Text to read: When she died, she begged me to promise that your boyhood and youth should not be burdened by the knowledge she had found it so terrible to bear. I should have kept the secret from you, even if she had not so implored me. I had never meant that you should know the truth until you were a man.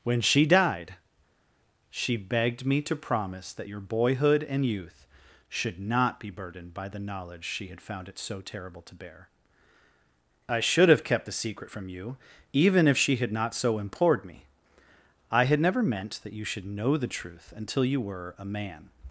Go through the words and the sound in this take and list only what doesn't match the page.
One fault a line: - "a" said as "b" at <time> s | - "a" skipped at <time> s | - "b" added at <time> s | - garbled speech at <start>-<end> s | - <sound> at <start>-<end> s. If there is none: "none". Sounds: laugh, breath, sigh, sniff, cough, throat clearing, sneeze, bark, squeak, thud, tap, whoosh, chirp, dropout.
none